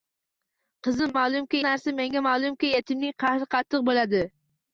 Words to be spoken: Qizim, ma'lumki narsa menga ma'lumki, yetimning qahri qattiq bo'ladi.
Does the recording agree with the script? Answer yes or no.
yes